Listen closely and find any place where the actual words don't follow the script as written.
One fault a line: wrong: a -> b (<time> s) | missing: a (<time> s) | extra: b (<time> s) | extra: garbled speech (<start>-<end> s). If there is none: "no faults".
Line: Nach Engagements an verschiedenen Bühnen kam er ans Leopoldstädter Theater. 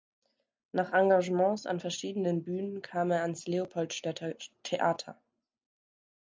no faults